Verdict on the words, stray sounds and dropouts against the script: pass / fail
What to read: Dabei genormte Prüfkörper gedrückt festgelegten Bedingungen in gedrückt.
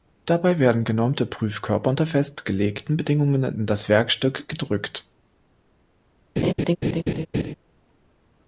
fail